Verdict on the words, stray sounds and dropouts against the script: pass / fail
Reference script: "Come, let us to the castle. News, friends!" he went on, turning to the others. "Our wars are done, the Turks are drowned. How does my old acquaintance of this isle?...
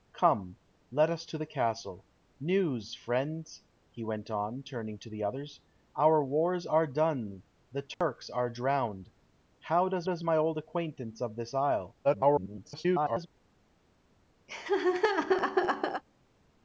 fail